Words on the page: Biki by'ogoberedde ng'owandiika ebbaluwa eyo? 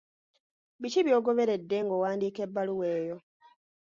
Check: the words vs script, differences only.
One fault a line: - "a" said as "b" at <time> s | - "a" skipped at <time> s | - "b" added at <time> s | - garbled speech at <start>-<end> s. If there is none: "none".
none